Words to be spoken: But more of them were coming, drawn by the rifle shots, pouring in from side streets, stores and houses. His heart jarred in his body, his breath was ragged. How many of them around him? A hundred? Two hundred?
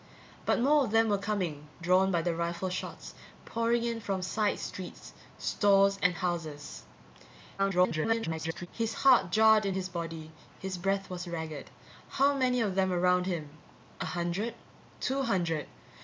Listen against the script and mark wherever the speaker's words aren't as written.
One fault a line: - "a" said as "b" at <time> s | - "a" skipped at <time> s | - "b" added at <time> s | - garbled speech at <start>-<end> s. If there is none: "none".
- garbled speech at 7.6-8.7 s